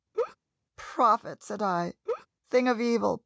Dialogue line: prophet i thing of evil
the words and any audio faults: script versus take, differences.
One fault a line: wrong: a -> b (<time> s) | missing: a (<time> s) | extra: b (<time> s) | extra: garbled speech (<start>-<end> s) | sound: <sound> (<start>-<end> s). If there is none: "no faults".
sound: laugh (0.1-0.4 s)
extra: said (1.4 s)
sound: laugh (2.1-2.3 s)